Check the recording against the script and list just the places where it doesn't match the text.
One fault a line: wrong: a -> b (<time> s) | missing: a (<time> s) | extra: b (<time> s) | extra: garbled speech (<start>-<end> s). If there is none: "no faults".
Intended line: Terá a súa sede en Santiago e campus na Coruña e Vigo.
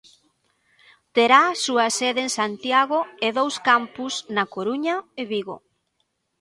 extra: dous (3.4 s)